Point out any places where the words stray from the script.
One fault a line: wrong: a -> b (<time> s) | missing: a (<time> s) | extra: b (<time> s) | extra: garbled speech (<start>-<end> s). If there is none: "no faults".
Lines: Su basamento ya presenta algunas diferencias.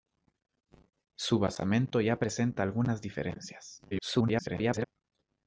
extra: garbled speech (3.9-4.9 s)